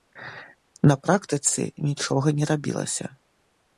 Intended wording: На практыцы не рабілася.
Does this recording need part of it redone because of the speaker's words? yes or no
yes